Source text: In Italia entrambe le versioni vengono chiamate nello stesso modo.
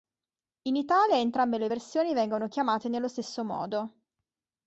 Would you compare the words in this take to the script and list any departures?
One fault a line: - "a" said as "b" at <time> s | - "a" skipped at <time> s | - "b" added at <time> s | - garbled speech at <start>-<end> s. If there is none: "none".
none